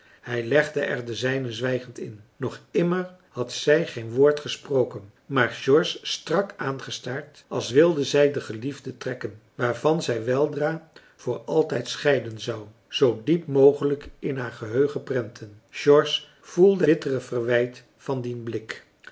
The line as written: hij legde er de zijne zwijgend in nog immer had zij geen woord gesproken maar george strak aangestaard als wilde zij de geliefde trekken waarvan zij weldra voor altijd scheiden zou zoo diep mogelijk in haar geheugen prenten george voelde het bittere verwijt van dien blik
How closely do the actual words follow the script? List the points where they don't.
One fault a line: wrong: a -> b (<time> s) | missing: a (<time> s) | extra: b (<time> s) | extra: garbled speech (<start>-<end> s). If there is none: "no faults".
missing: het (16.9 s)